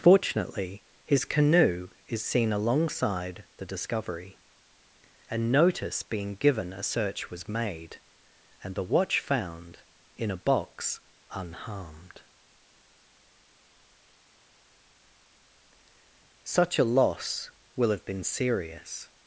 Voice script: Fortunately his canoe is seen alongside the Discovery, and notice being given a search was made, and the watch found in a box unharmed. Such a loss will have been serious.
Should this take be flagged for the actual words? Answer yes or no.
no